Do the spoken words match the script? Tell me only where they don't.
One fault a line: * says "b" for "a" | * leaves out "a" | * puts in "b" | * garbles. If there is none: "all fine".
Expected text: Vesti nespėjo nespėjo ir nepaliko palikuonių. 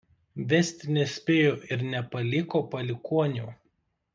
* leaves out "nespėjo"